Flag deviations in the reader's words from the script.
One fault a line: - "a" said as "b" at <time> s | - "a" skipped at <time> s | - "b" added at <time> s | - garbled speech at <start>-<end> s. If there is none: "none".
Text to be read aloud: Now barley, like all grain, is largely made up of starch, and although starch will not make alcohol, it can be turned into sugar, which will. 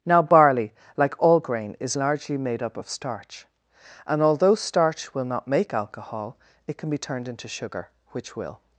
none